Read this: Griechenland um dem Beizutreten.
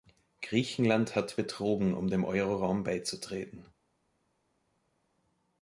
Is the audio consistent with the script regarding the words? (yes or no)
no